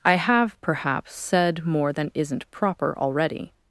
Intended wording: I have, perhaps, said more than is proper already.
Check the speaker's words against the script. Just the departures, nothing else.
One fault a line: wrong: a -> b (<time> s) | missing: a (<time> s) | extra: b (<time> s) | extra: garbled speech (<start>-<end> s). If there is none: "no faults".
wrong: is -> isn't (2.1 s)